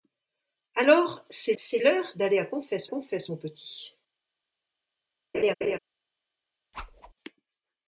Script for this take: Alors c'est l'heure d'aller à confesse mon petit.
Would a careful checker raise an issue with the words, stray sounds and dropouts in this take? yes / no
yes